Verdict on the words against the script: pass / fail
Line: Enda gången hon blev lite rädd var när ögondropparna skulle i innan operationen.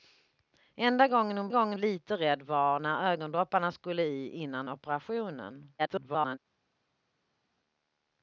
fail